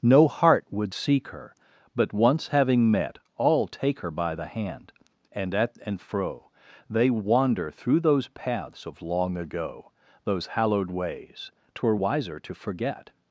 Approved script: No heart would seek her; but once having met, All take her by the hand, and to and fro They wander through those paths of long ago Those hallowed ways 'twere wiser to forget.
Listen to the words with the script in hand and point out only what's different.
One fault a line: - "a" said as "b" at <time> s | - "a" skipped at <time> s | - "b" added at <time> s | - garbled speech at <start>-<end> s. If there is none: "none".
- "to" said as "at" at 5.5 s